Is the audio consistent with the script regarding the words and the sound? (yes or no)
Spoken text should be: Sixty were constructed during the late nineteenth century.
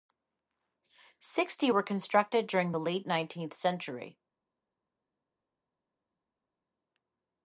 yes